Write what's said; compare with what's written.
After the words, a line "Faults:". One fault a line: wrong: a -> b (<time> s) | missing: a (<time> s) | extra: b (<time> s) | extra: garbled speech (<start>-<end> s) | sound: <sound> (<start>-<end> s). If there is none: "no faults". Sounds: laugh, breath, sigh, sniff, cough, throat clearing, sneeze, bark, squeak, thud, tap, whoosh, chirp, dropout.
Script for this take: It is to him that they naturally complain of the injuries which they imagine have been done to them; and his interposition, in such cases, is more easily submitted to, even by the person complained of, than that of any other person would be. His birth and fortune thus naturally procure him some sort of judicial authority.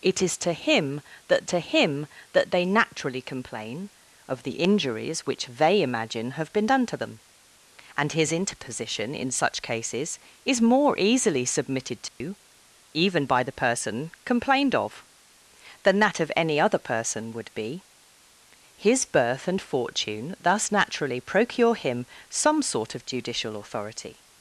It is to him that to him that they naturally complain of the injuries which they imagine have been done to them; and his interposition, in such cases, is more easily submitted to, even by the person complained of, than that of any other person would be. His birth and fortune thus naturally procure him some sort of judicial authority.
Faults:
extra: to him that (1.5 s)
sound: dropout (12.1-12.2 s)